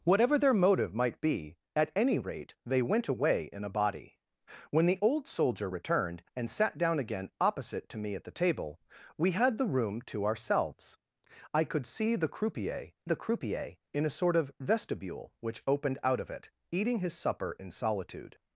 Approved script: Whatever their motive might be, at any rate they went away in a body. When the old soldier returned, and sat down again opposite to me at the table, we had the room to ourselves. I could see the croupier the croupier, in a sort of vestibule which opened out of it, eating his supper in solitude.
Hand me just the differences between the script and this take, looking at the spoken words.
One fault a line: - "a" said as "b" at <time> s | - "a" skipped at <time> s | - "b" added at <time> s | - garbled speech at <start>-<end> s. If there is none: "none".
none